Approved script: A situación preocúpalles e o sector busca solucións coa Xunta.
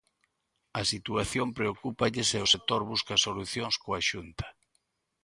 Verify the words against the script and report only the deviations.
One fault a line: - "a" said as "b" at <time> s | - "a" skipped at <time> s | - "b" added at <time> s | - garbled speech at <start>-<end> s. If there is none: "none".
none